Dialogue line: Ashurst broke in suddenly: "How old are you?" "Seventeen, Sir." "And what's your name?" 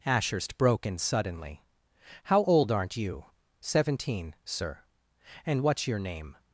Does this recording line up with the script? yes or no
no